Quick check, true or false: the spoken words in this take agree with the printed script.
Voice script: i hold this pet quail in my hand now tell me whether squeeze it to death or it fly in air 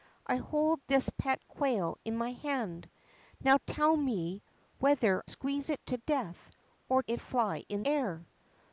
true